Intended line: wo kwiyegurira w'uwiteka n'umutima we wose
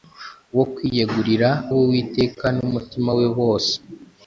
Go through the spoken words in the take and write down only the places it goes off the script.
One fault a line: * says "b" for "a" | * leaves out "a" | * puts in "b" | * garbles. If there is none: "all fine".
all fine